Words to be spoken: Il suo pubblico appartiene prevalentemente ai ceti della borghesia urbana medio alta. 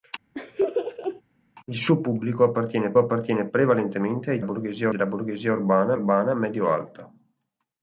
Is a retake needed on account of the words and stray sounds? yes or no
yes